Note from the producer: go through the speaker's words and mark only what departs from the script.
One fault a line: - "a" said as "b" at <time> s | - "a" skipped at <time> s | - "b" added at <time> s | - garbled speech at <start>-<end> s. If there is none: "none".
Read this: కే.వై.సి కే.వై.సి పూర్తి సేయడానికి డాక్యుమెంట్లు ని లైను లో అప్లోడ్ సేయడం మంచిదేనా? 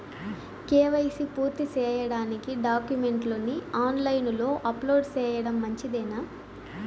- "కే.వై.సి" skipped at 1.2 s
- "ఆన్" added at 3.8 s